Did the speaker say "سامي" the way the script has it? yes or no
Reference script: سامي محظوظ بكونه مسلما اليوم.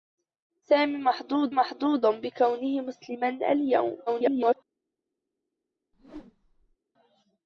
yes